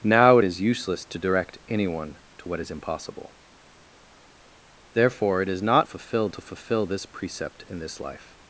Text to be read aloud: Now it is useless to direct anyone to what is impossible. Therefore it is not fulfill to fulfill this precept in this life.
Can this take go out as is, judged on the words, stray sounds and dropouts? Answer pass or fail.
pass